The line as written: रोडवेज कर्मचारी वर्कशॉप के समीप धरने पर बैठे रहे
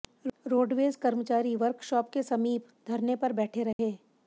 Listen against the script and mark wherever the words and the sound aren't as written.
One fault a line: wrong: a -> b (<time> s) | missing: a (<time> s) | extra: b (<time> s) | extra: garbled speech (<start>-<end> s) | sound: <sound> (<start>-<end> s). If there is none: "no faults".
sound: dropout (3.7-3.8 s)